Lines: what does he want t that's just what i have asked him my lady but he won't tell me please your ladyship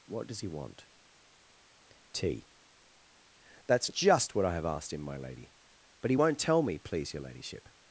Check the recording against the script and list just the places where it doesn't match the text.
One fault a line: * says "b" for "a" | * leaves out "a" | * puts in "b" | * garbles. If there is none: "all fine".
all fine